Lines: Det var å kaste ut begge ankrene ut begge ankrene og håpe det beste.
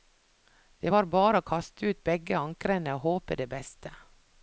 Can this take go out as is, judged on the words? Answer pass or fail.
fail